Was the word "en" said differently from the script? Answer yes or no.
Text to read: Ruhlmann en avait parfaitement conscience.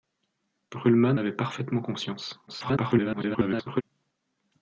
yes